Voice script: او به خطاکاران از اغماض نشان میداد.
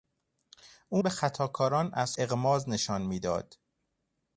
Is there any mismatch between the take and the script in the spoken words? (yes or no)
no